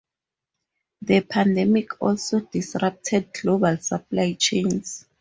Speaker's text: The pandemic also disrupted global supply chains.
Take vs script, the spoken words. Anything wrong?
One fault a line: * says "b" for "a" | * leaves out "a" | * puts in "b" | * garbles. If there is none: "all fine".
all fine